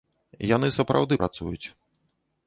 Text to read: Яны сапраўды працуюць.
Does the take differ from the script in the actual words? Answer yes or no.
no